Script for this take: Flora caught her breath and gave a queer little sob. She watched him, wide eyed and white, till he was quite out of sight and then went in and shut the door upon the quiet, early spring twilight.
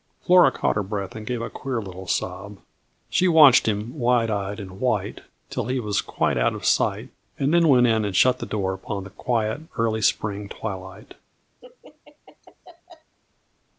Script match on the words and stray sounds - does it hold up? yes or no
no